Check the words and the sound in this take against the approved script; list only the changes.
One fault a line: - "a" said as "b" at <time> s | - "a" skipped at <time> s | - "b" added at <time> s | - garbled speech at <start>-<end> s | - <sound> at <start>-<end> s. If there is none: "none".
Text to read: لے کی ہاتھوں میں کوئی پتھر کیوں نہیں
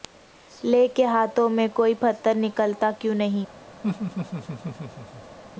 - "کی" said as "کے" at 0.9 s
- "نکلتا" added at 2.4 s
- laugh at 3.8-5.4 s